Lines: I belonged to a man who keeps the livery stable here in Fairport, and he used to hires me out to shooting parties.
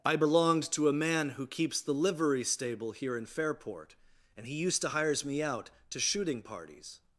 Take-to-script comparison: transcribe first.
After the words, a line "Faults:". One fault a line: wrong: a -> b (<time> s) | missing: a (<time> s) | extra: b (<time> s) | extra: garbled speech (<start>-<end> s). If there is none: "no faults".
I belonged to a man who keeps the livery stable here in Fairport, and he used to hires me out to shooting parties.
Faults:
no faults